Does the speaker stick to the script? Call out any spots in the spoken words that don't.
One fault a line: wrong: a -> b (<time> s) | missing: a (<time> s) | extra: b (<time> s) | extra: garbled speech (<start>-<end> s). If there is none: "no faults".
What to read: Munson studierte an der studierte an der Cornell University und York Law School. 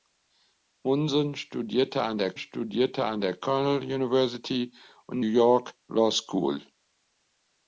no faults